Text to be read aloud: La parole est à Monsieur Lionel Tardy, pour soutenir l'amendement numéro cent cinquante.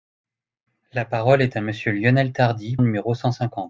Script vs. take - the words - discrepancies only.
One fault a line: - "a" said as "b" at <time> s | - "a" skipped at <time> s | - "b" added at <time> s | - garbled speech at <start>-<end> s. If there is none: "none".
- "pour soutenir l'amendement" skipped at 2.8 s